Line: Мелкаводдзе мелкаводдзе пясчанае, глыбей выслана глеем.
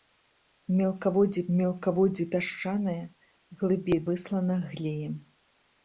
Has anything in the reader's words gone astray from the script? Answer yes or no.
no